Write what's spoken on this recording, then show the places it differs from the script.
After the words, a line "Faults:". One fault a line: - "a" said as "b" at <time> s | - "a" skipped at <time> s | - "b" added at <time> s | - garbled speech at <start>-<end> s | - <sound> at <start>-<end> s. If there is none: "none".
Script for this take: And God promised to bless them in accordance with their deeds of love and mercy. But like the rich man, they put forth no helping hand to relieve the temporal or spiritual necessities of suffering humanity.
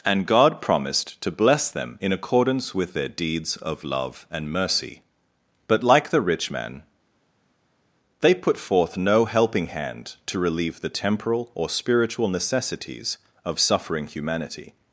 And God promised to bless them in accordance with their deeds of love and mercy. But like the rich man, they put forth no helping hand to relieve the temporal or spiritual necessities of suffering humanity.
Faults:
none